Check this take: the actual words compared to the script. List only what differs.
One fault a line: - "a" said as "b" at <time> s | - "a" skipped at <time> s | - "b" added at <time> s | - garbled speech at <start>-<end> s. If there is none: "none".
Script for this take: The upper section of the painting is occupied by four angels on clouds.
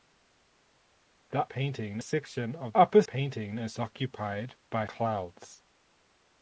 - "upper" said as "painting" at 1.4 s
- "the" said as "upper" at 2.8 s
- "four angels on" skipped at 4.9 s